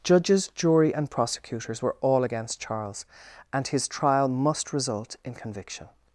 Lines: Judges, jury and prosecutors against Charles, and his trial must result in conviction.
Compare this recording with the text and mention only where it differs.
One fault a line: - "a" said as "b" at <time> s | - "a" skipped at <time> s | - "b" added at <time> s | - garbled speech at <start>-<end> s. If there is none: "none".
- "were all" added at 1.8 s